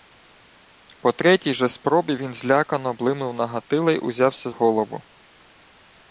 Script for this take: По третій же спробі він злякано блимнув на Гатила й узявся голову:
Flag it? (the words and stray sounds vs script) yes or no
no